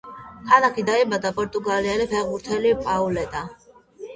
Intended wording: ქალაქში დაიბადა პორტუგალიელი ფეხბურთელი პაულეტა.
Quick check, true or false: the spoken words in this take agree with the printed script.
true